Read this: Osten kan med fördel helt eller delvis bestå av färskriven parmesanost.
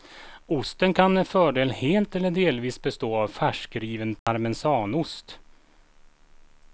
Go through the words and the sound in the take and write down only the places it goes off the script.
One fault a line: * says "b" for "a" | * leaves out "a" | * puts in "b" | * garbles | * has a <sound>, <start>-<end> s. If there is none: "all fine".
* has a dropout, 4.2-4.3 s